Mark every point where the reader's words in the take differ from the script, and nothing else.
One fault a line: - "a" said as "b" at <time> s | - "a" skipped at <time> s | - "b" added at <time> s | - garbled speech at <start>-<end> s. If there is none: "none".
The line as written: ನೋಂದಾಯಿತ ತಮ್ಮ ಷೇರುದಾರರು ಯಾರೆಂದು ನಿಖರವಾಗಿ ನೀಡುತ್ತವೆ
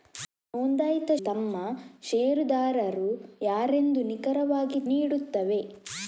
none